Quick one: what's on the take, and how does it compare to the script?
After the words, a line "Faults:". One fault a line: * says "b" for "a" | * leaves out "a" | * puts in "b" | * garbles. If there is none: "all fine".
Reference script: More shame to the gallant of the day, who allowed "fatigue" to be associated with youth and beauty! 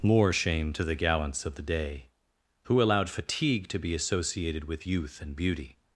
More shame to the gallants of the day, who allowed "fatigue" to be associated with youth and beauty!
Faults:
* says "gallants" for "gallant"